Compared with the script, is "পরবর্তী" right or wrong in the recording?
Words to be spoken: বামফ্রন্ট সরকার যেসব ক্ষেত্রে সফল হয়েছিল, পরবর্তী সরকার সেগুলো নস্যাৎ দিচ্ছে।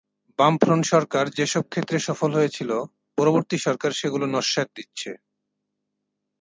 right